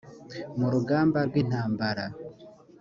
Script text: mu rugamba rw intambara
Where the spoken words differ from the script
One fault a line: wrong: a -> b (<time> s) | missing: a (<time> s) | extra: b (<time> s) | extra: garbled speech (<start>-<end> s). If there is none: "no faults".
no faults